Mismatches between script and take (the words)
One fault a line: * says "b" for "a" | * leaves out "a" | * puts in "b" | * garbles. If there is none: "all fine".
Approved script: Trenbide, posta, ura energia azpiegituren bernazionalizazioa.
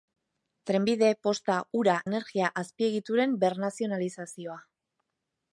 all fine